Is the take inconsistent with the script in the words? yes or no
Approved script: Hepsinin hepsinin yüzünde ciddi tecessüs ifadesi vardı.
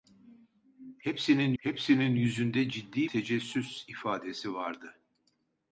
no